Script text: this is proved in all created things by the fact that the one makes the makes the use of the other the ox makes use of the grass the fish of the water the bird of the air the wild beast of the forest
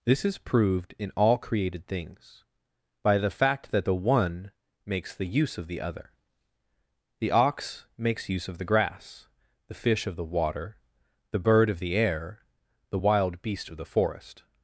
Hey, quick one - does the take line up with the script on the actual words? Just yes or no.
no